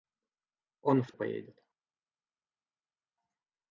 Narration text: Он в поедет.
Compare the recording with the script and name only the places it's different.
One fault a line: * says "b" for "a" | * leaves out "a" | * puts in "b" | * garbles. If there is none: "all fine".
all fine